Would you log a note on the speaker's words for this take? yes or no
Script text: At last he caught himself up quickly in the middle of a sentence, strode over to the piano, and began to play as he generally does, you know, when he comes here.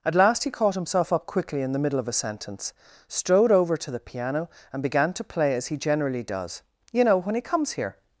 no